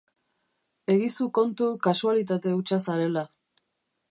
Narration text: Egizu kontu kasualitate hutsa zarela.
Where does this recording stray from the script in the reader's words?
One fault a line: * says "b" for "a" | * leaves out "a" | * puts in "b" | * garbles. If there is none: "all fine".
all fine